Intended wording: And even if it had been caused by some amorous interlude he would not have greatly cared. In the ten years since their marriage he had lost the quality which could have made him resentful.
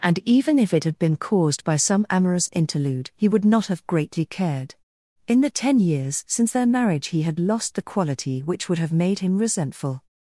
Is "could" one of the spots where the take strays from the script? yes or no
yes